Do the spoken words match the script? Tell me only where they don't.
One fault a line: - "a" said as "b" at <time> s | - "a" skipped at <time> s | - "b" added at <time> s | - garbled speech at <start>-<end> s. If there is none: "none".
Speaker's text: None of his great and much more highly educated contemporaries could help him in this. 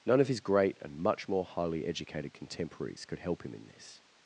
none